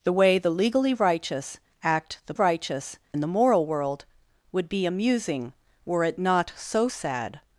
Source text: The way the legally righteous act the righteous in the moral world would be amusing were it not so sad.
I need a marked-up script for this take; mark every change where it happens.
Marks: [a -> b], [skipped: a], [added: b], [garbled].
The way the legally righteous act the righteous in the moral world would be amusing were it not so sad.